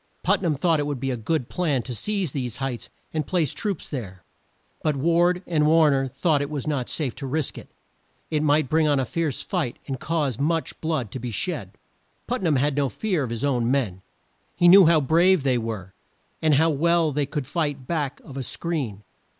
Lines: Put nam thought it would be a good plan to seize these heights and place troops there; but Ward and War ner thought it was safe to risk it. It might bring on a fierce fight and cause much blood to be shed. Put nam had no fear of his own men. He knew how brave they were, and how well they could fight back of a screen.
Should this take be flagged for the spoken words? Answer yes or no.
yes